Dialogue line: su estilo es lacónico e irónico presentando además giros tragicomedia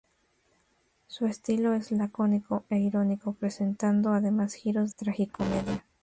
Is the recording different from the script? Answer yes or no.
no